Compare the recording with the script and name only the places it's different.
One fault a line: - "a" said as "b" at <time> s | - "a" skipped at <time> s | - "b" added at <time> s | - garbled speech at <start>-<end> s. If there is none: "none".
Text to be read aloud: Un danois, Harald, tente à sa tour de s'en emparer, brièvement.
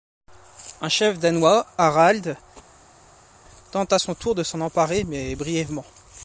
- "chef" added at 0.9 s
- "sa" said as "son" at 3.9 s
- "mais" added at 5.0 s